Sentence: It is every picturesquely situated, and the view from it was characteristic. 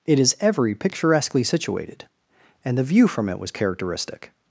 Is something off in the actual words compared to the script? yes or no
no